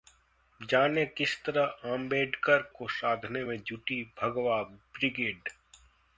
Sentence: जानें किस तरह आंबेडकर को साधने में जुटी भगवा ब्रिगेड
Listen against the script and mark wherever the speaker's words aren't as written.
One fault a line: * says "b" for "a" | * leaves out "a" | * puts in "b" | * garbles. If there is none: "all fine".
all fine